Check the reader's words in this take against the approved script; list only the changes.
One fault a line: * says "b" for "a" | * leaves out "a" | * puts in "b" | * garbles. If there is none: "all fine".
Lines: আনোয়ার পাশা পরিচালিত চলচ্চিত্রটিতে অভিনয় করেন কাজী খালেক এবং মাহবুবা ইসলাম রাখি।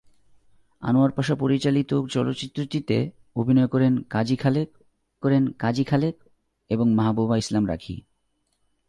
* puts in "করেন কাজী খালেক"